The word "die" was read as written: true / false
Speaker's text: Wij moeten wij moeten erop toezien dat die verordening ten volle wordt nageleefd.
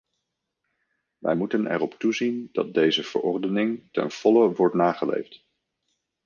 false